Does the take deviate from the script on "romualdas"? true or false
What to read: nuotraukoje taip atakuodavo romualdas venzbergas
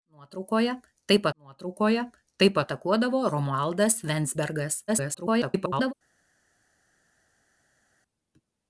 false